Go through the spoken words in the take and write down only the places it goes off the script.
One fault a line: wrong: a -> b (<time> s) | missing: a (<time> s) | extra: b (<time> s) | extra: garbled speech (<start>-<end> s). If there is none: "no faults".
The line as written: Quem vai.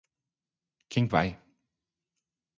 no faults